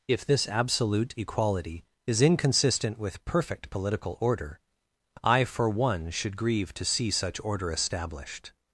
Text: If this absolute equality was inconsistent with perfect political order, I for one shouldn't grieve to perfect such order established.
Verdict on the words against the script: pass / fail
fail